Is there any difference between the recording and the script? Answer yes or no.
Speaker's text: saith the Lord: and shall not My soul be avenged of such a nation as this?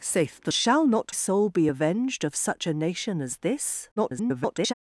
yes